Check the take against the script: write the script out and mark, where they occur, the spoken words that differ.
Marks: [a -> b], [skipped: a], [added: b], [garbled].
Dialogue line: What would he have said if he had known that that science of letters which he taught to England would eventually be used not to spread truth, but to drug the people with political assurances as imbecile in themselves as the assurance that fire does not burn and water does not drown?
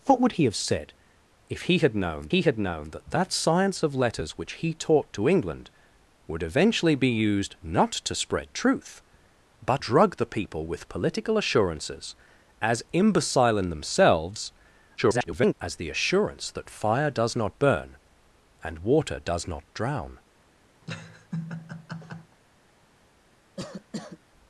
What would he have said if he had known [added: he had known] that that science of letters which he taught to England would eventually be used not to spread truth, but [skipped: to] drug the people with political assurances as imbecile in themselves [garbled] as the assurance that fire does not burn and water does not drown?